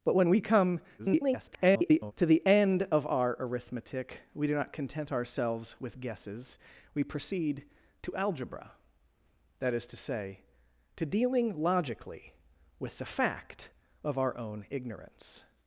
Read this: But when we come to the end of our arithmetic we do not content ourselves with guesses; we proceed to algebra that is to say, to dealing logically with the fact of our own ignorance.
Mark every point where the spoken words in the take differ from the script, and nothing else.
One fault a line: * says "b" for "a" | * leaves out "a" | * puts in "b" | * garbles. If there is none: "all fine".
* garbles